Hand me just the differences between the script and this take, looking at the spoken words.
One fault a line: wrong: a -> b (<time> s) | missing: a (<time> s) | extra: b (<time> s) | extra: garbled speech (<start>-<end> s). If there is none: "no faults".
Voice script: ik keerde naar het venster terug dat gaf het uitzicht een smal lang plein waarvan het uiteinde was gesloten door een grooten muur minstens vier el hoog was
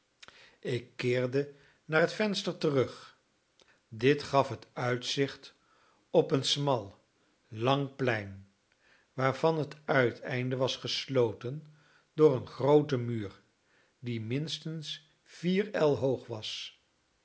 wrong: dat -> dit (3.9 s)
extra: op (6.1 s)
extra: die (14.0 s)